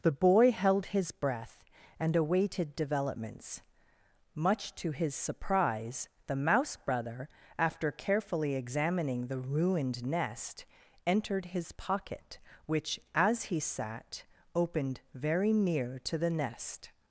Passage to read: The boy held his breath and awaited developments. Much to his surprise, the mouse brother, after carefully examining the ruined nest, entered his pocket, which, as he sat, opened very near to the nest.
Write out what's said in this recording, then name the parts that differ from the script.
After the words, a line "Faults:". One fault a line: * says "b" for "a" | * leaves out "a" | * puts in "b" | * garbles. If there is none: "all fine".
The boy held his breath and awaited developments. Much to his surprise, the mouse brother, after carefully examining the ruined nest, entered his pocket, which, as he sat, opened very near to the nest.
Faults:
all fine